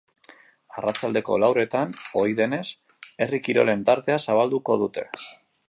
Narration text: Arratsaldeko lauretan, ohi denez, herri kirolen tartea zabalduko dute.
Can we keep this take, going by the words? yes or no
yes